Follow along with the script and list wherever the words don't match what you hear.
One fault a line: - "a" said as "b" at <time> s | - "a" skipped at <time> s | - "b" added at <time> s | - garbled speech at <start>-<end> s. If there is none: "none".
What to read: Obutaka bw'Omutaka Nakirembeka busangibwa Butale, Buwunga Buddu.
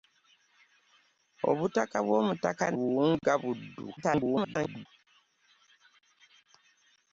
- "Nakirembeka busangibwa Butale" skipped at 2.6 s
- garbled speech at 4.0-4.9 s